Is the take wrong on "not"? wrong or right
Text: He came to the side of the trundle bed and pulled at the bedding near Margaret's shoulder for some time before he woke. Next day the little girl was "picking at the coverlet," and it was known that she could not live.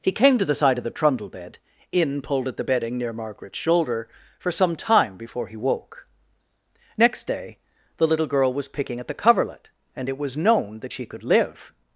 wrong